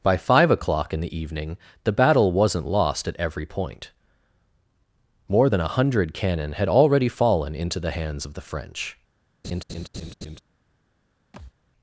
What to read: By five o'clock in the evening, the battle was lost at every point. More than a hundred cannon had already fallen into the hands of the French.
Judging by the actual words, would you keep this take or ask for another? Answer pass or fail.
fail